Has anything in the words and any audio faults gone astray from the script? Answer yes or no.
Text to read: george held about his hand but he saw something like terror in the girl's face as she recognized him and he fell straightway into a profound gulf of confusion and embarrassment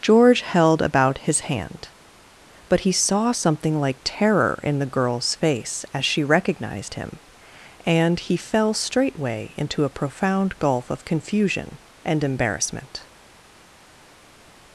no